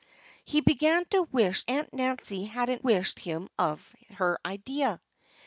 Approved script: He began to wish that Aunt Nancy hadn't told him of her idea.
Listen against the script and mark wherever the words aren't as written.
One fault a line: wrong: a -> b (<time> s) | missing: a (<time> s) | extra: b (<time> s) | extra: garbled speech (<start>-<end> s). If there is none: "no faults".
missing: that (1.6 s)
wrong: told -> wish (2.8 s)